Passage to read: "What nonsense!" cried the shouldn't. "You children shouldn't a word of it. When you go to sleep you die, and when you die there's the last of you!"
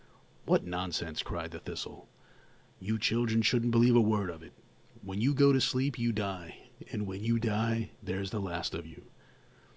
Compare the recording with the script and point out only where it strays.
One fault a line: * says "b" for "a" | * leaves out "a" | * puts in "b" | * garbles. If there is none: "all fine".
* says "thistle" for "shouldn't"
* puts in "believe"